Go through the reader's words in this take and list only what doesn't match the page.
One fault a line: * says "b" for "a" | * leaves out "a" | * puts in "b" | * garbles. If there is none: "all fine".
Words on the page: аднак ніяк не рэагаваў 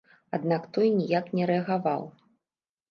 * puts in "той"